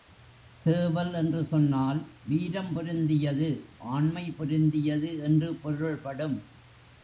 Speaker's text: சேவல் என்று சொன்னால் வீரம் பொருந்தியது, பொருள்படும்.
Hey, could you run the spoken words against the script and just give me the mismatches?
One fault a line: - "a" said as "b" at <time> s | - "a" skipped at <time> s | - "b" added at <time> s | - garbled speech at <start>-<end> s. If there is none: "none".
- "ஆண்மை பொருந்தியது என்று" added at 3.8 s